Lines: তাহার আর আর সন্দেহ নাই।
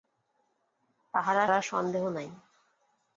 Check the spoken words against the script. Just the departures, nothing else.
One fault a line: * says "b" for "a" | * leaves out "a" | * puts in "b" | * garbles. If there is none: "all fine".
all fine